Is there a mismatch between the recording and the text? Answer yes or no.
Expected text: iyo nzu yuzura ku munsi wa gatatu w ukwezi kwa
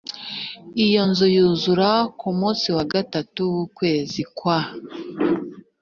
no